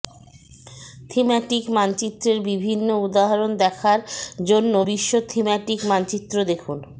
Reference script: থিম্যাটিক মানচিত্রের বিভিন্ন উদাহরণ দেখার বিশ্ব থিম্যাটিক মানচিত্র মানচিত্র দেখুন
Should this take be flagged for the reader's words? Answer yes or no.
yes